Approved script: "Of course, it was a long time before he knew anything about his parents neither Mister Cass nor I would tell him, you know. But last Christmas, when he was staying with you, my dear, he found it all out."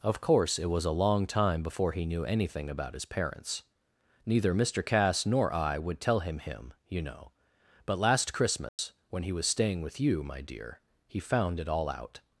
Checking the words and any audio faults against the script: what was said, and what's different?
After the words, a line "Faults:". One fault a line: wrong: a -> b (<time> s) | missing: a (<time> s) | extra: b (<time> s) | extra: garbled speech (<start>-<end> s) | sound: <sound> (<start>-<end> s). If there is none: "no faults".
"Of course, it was a long time before he knew anything about his parents neither Mister Cass nor I would tell him him, you know. But last Christmas, when he was staying with you, my dear, he found it all out."
Faults:
extra: him (6.4 s)
sound: dropout (8.7-8.8 s)